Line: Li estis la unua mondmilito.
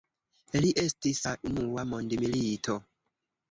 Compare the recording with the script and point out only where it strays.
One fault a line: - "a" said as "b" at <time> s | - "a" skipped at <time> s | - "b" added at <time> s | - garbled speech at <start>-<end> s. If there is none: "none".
none